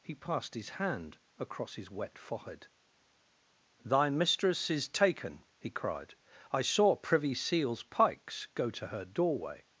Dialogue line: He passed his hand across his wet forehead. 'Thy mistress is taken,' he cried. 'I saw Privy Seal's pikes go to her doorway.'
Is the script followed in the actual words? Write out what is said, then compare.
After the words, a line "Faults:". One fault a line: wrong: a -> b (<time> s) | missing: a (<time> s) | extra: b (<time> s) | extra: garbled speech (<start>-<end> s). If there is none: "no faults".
He passed his hand across his wet forehead. 'Thy mistress is taken,' he cried. 'I saw Privy Seal's pikes go to her doorway.'
Faults:
no faults